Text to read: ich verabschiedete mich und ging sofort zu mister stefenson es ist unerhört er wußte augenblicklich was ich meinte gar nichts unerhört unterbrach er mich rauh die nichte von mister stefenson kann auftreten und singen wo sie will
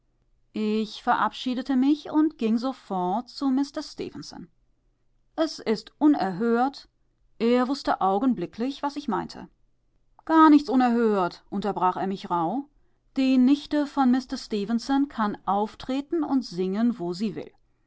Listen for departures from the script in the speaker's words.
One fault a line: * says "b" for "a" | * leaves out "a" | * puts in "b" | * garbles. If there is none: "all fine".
all fine